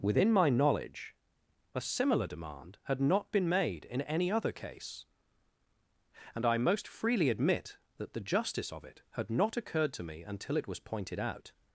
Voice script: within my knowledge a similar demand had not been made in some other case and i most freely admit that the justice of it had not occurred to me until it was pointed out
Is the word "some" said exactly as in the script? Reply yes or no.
no